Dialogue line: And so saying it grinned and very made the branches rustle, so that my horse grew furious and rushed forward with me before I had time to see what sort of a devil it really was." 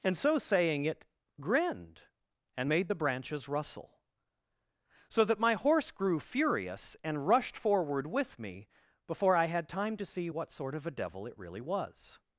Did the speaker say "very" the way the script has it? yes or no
no